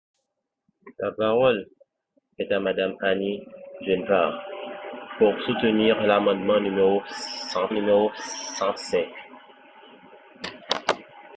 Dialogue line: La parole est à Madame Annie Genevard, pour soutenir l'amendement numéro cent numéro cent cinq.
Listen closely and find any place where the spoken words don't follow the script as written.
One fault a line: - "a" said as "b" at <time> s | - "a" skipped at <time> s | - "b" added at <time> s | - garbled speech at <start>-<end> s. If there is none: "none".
none